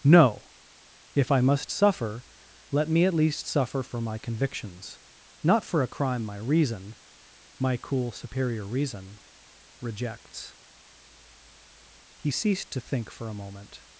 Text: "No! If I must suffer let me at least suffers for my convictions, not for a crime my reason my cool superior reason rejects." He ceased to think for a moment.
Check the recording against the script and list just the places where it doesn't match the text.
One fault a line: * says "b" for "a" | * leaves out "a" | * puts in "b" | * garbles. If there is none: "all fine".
* says "suffer" for "suffers"